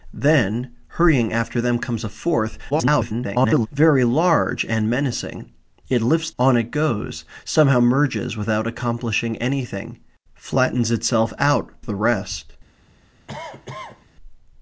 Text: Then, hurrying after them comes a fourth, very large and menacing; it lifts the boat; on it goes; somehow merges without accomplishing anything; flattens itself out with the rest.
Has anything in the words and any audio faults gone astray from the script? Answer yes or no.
yes